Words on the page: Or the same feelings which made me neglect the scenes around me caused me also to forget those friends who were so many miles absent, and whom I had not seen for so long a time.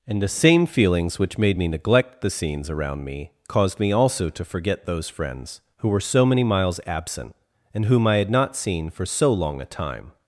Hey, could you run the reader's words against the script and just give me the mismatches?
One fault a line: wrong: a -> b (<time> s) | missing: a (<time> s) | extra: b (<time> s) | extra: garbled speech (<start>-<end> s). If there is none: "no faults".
wrong: Or -> And (0.1 s)